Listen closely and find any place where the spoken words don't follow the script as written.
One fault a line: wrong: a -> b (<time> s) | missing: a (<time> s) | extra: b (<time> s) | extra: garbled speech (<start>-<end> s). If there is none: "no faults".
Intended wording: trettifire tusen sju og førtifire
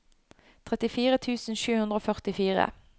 extra: hundre (1.8 s)